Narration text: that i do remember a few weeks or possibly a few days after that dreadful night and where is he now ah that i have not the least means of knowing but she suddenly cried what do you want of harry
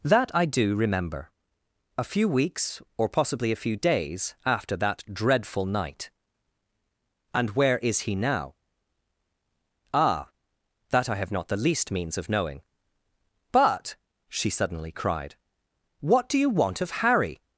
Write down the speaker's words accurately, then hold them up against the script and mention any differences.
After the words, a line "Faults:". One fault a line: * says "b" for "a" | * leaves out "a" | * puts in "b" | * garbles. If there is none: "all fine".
that i do remember a few weeks or possibly a few days after that dreadful night and where is he now ah that i have not the least means of knowing but she suddenly cried what do you want of harry
Faults:
all fine